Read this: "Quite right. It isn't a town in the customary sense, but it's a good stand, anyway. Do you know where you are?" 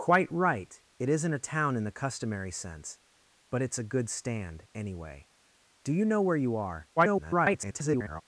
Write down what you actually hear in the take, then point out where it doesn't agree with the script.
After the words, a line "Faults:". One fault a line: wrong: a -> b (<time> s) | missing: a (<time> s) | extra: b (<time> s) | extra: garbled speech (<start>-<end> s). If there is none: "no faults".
"Quite right. It isn't a town in the customary sense, but it's a good stand, anyway. Do you know where you are?" [garbled]
Faults:
extra: garbled speech (7.0-8.2 s)